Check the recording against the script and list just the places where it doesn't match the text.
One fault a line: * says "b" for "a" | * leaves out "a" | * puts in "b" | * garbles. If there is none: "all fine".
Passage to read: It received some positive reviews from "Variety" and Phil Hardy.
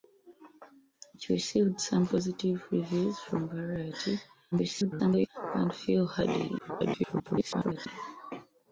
* garbles
* garbles